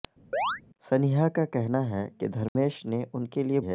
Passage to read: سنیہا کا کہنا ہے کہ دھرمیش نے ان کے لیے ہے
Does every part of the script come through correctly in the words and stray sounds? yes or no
no